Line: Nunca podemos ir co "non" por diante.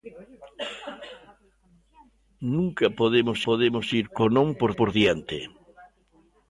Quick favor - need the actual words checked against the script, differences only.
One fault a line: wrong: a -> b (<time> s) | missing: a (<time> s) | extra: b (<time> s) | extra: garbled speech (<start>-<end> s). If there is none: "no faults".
extra: podemos (3.5 s)
extra: por (4.8 s)